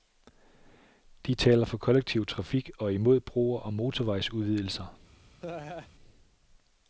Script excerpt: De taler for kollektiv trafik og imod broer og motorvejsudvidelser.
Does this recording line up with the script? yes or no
yes